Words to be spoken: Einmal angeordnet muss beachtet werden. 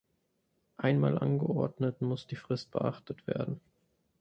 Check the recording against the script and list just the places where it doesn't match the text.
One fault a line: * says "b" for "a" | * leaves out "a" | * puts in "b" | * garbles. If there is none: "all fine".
* puts in "die Frist"